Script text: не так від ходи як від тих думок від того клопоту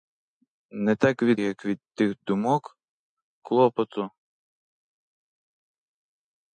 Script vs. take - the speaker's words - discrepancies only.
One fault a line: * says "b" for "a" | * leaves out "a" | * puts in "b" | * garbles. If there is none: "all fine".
* leaves out "ходи"
* leaves out "від того"